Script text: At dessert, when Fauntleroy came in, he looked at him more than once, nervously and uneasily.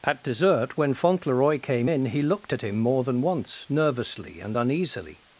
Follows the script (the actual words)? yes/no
yes